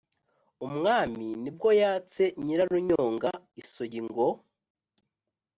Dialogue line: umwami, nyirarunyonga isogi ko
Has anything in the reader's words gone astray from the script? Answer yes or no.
yes